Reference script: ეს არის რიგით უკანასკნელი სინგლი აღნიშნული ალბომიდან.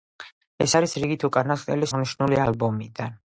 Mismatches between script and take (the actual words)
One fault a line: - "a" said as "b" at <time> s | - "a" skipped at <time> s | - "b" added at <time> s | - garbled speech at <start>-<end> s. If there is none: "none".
- "სინგლი" skipped at 1.9 s